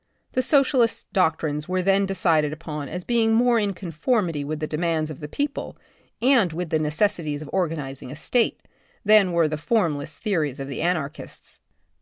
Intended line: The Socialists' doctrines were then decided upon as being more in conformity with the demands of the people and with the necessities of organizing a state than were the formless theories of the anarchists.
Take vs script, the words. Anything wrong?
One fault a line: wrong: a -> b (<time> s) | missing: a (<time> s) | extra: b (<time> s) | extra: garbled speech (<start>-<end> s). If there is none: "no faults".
no faults